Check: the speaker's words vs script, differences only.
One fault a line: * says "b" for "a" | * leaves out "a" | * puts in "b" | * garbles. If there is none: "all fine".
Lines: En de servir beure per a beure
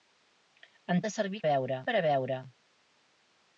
all fine